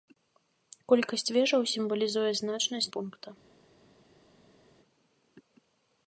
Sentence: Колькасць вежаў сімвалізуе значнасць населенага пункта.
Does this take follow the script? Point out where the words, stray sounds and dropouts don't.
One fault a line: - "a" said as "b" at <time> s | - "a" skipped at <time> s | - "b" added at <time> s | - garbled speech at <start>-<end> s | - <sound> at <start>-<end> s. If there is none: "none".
- "населенага" skipped at 2.9 s